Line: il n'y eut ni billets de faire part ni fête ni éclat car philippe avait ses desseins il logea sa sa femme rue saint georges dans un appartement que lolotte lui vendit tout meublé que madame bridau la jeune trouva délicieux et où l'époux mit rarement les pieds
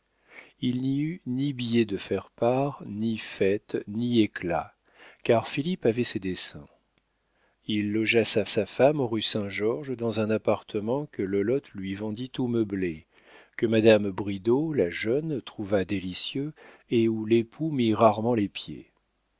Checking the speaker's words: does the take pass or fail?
pass